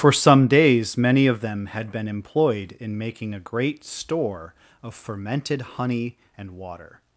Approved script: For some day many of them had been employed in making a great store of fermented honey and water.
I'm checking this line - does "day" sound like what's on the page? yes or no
no